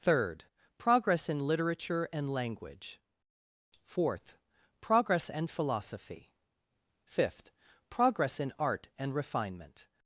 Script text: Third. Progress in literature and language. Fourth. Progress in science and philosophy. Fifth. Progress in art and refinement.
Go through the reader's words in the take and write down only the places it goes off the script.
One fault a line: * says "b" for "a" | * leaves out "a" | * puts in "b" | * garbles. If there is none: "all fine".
* leaves out "in science"